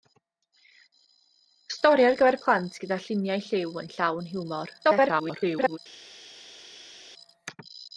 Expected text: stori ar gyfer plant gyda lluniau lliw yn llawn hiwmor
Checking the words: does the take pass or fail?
fail